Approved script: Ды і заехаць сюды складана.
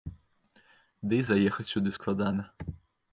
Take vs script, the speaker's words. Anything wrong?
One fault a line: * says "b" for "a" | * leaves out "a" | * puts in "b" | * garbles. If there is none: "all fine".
all fine